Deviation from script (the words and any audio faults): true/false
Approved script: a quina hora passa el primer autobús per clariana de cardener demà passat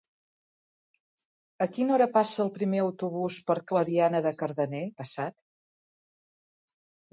true